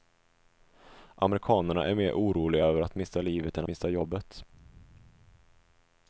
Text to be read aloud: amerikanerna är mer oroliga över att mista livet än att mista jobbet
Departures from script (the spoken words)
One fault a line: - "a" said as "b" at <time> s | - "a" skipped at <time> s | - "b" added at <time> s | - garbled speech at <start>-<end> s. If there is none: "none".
- "att" skipped at 3.7 s